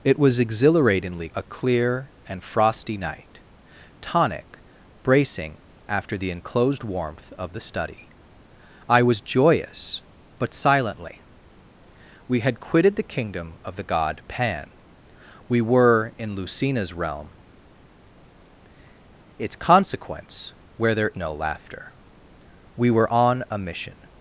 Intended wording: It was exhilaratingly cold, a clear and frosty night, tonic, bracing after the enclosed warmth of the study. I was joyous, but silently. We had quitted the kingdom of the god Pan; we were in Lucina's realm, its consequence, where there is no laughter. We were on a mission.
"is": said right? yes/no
no